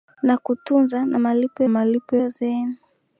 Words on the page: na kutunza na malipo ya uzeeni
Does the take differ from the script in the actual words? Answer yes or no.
yes